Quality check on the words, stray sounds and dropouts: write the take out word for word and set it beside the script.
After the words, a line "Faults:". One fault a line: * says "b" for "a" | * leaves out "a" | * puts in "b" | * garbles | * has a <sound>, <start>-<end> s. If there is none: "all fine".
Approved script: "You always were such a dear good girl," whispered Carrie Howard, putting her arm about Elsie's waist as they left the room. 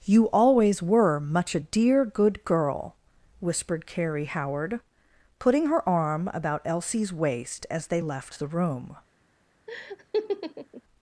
"You always were much a dear good girl," whispered Carrie Howard, putting her arm about Elsie's waist as they left the room.
Faults:
* says "much" for "such"
* has a laugh, 9.7-10.8 s